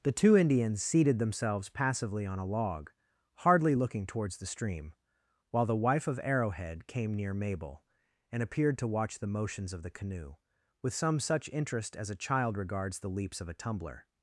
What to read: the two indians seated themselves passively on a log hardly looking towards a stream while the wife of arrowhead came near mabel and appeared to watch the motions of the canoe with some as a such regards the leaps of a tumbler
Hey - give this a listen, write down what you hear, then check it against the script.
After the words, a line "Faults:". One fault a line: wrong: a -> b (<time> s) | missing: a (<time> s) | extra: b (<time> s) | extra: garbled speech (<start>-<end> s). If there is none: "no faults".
the two indians seated themselves passively on a log hardly looking towards the stream while the wife of arrowhead came near mabel and appeared to watch the motions of the canoe with some such interest as a child regards the leaps of a tumbler
Faults:
wrong: a -> the (4.4 s)
extra: such interest (11.2 s)
wrong: such -> child (12.1 s)